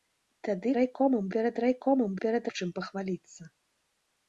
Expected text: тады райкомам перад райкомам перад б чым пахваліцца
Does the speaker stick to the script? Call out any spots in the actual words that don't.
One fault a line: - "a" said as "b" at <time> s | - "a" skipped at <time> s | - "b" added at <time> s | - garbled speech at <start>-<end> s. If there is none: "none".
none